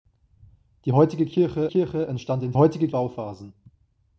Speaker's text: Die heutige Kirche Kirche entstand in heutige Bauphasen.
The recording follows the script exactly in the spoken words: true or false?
true